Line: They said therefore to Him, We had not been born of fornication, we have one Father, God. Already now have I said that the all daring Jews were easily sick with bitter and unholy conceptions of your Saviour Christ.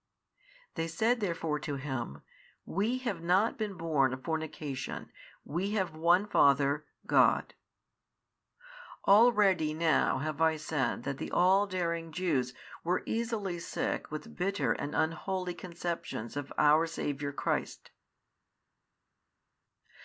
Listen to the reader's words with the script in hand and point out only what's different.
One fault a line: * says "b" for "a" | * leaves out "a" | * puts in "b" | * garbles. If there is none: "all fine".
* says "have" for "had"
* says "our" for "your"